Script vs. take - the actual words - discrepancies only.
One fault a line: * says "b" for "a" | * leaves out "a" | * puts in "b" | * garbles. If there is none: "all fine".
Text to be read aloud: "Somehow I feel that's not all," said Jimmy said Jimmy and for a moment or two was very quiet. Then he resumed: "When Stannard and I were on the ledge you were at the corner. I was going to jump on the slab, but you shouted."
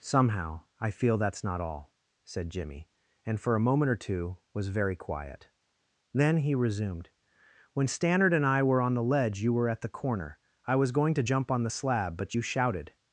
* leaves out "said Jimmy"